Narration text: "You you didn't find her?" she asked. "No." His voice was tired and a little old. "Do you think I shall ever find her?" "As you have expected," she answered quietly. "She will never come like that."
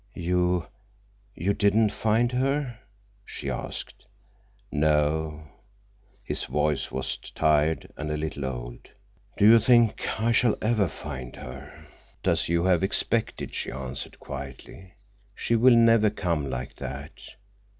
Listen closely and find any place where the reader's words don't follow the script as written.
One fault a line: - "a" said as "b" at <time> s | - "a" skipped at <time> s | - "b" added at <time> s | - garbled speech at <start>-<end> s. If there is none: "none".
none